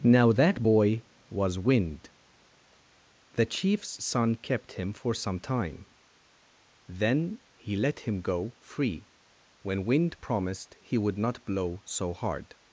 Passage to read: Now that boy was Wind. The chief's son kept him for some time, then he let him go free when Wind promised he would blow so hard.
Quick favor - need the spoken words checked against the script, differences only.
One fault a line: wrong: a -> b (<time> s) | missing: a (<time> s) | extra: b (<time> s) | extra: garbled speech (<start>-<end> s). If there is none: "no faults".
extra: not (11.2 s)